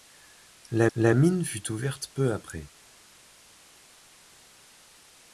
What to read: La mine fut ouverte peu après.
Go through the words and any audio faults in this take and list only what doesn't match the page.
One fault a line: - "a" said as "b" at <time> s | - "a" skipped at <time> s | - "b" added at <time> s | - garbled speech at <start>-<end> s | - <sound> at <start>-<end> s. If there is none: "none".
- "la" added at 1.0 s